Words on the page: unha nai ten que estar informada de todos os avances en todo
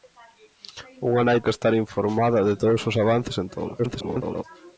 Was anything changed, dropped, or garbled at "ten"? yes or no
yes